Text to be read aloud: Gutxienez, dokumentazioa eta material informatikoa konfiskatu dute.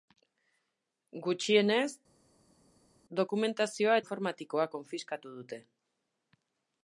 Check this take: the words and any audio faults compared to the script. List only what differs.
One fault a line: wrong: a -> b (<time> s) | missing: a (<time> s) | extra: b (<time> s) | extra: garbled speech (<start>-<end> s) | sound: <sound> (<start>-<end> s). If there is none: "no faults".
missing: eta material (4.0 s)